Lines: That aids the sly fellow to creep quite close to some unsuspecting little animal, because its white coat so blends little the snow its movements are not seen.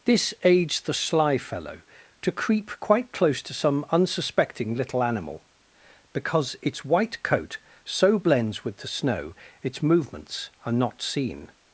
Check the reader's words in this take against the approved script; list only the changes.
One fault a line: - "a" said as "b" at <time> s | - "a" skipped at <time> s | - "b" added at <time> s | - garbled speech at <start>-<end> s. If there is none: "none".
- "That" said as "This" at 0.1 s
- "little" said as "with" at 8.6 s